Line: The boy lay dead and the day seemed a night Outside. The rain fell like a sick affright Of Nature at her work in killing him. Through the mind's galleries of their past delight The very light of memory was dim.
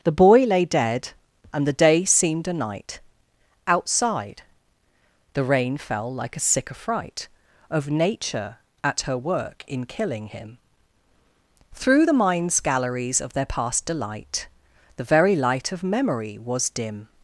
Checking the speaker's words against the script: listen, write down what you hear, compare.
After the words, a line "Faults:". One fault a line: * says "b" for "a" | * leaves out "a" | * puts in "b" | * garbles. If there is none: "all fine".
The boy lay dead and the day seemed a night Outside. The rain fell like a sick affright Of Nature at her work in killing him. Through the mind's galleries of their past delight The very light of memory was dim.
Faults:
all fine